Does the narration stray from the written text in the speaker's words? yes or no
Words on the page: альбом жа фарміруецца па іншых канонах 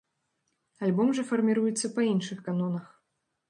no